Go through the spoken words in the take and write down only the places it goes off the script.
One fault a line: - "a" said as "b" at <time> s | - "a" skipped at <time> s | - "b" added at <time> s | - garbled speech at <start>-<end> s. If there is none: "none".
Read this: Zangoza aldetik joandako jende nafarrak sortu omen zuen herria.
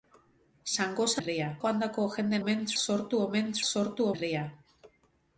- "aldetik" said as "herria" at 1.2 s
- "nafarrak" said as "omen" at 2.4 s
- "zuen" said as "sortu" at 3.7 s